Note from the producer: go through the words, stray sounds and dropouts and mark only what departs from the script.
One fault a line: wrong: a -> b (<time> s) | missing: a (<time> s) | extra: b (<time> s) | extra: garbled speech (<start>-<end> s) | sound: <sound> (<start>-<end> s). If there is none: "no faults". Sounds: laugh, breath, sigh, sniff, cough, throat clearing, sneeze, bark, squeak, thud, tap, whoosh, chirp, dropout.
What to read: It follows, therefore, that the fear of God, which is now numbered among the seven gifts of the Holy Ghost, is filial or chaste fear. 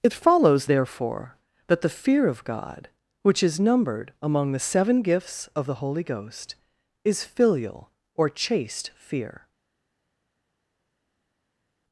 missing: now (3.6 s)